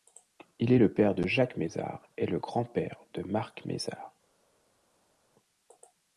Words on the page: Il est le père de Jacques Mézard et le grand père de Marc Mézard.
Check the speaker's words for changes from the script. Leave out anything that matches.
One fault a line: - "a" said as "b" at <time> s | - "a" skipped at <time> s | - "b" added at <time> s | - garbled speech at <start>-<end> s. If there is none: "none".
none